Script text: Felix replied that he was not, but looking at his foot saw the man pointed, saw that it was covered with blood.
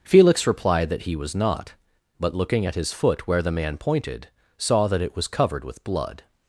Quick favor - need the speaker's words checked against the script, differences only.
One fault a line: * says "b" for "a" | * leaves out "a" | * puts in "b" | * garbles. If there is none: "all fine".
* says "where" for "saw"